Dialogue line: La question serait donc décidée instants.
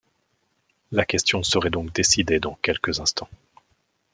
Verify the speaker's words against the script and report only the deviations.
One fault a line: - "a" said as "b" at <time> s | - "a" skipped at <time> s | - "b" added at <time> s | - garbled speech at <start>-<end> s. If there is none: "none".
- "dans quelques" added at 2.4 s